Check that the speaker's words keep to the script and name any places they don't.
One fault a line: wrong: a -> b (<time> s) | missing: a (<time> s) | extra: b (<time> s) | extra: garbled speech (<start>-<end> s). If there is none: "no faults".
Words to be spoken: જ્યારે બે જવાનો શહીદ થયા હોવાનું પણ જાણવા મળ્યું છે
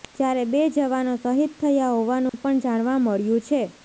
no faults